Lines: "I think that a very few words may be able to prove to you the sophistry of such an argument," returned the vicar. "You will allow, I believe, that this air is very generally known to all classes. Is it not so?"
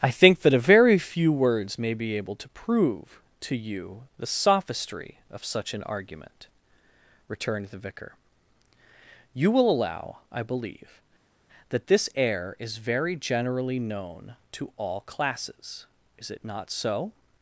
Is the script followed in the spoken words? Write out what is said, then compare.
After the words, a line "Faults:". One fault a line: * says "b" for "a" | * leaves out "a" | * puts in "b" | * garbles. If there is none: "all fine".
"I think that a very few words may be able to prove to you the sophistry of such an argument," returned the vicar. "You will allow, I believe, that this air is very generally known to all classes. Is it not so?"
Faults:
all fine